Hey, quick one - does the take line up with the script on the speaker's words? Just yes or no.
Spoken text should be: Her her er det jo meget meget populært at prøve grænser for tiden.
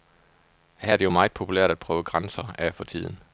no